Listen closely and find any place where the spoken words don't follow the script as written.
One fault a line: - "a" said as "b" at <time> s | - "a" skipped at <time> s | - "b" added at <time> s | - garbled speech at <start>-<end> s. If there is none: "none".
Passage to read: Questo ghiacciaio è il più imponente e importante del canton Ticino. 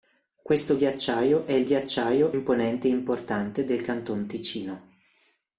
- "più" said as "ghiacciaio" at 1.6 s